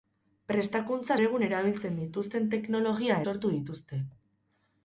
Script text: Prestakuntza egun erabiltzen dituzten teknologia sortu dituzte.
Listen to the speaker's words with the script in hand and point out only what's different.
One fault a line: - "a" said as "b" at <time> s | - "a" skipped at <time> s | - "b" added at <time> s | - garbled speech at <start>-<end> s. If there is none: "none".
none